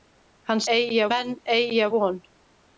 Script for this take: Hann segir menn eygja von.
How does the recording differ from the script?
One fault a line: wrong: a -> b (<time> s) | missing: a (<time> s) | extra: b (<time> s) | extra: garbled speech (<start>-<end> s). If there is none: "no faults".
wrong: segir -> eygja (0.8 s)